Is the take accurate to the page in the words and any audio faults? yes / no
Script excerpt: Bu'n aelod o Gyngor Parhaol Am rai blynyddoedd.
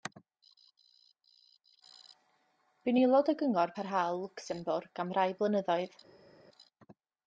no